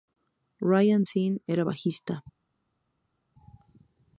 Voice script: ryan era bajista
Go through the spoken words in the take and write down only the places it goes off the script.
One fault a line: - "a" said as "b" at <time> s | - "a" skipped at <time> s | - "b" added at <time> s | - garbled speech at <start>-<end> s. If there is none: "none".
- "sinn" added at 1.0 s